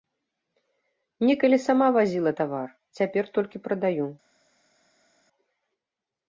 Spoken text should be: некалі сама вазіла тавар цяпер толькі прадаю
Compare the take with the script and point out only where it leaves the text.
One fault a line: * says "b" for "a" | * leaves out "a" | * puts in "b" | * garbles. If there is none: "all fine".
all fine